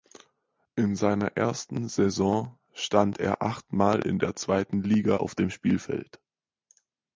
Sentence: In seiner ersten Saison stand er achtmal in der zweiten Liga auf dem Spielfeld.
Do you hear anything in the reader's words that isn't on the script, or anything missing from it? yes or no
no